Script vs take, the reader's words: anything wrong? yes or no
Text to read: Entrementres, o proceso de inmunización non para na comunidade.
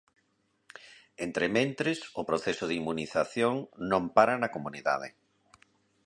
no